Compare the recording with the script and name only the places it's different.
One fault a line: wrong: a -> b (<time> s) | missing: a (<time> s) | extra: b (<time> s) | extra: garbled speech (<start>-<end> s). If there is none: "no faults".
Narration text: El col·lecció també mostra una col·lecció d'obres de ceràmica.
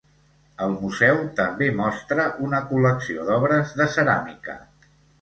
wrong: col·lecció -> museu (0.8 s)